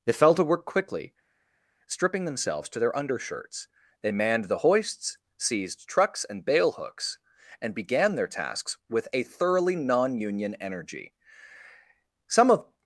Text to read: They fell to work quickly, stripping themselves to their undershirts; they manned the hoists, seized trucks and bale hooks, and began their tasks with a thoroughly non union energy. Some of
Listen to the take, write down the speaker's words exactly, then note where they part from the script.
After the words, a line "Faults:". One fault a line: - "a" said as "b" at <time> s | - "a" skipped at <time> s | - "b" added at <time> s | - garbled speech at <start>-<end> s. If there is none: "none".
They fell to work quickly, stripping themselves to their undershirts; they manned the hoists, seized trucks and bale hooks, and began their tasks with a thoroughly non union energy. Some of
Faults:
none